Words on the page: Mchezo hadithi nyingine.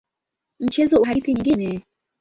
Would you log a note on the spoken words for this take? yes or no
no